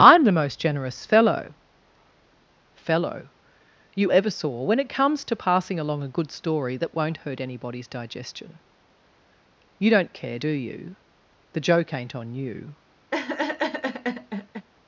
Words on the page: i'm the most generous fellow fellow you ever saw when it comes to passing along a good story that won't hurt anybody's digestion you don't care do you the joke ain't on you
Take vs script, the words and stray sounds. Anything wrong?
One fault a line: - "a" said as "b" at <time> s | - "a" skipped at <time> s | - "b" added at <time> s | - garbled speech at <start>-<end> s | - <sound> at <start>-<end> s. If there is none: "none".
- laugh at 13.1-14.7 s